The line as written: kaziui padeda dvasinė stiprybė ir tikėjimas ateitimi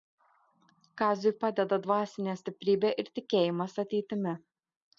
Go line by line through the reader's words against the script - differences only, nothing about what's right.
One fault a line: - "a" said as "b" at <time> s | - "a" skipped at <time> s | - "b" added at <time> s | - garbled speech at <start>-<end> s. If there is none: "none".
none